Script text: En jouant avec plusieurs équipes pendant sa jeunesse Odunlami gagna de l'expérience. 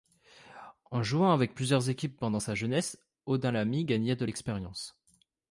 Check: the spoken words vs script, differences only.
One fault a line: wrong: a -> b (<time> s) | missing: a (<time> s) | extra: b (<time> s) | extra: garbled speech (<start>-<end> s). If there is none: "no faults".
no faults